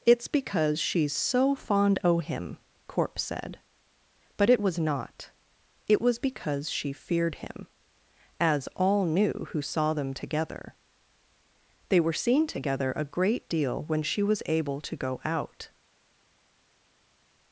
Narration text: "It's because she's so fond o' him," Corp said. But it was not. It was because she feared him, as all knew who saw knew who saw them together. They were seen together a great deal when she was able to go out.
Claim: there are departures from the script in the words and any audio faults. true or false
true